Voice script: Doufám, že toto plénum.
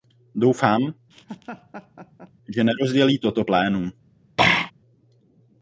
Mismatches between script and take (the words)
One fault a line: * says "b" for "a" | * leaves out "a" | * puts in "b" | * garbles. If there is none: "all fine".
* puts in "nerozdělí"